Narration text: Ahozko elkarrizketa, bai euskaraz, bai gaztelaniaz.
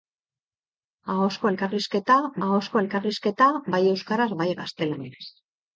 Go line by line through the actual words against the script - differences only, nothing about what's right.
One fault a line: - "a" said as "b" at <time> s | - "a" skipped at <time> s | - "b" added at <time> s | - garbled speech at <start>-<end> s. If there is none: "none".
- "ahozko elkarrizketa" added at 2.5 s